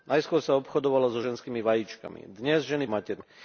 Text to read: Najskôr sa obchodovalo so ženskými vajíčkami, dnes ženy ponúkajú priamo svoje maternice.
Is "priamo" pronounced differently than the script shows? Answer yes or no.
yes